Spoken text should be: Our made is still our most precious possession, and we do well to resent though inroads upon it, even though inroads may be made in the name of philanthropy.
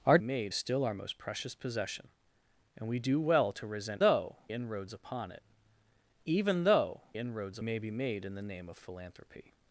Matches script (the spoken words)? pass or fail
pass